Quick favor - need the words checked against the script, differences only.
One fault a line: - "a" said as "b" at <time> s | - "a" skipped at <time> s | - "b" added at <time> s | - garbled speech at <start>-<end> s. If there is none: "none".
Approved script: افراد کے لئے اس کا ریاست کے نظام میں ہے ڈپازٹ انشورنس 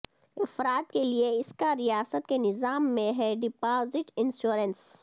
none